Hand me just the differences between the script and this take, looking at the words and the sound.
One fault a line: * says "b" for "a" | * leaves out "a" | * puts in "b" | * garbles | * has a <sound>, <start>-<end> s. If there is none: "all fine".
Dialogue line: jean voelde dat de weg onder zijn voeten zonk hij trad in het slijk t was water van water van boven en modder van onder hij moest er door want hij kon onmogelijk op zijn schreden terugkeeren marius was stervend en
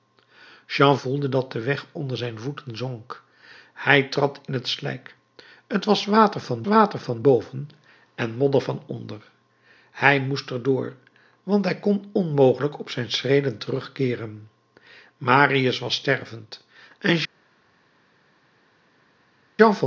all fine